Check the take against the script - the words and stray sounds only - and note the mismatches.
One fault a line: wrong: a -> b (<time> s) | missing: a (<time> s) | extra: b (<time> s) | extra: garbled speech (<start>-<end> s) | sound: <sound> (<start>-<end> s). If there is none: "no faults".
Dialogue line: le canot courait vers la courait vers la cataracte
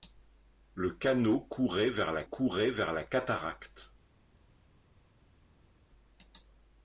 no faults